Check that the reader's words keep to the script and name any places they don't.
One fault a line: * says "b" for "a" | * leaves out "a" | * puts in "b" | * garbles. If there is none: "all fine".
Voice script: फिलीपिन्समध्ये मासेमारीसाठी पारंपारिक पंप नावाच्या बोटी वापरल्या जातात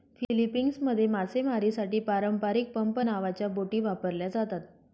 all fine